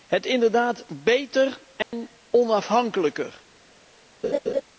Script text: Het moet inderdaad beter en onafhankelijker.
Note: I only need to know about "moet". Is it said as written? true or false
false